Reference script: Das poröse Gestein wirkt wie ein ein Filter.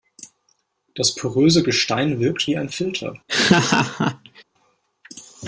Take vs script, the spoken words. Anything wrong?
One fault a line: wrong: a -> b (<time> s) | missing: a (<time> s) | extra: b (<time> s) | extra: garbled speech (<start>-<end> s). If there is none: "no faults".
missing: ein (2.7 s)